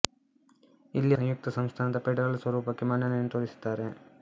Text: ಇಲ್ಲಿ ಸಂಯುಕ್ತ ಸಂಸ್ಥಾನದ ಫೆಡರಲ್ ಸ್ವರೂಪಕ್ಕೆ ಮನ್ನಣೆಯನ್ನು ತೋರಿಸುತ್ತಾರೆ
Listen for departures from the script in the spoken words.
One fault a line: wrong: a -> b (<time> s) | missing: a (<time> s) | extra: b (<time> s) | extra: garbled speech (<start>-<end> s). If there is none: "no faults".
no faults